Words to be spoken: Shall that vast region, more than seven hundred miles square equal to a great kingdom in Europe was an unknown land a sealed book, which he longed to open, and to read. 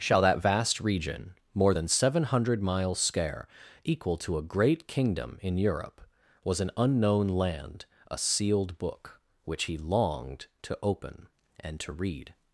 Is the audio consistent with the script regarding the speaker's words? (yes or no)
yes